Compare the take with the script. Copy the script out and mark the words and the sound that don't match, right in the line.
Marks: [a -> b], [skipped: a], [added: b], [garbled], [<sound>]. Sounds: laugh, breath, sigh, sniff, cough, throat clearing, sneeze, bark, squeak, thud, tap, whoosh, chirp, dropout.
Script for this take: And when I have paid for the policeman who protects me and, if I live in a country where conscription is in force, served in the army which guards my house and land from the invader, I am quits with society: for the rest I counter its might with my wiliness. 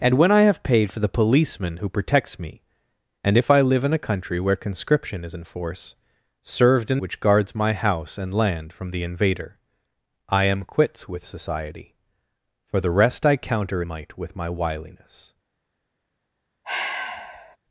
And when I have paid for the policeman who protects me and, if I live in a country where conscription is in force, served in [skipped: the army] which guards my house and land from the invader, I am quits with society: for the rest I counter [skipped: its] might with my wiliness. [sigh]